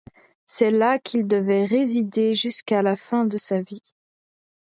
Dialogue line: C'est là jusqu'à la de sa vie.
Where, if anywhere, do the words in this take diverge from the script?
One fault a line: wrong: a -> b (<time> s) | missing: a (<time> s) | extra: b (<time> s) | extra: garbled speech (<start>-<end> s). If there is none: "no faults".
extra: qu'il devait résider (1.0 s)
extra: fin (3.0 s)